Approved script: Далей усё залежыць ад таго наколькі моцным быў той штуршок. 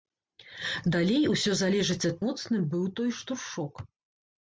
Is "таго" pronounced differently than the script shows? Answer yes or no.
yes